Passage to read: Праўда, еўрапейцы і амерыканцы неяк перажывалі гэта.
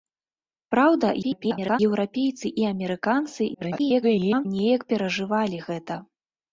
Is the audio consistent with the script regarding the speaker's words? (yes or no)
no